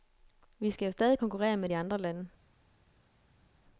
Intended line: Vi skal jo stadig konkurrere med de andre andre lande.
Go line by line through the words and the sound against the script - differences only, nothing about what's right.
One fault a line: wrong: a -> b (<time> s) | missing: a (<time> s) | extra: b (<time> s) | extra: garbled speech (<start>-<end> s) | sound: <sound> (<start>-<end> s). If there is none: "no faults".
missing: andre (2.0 s)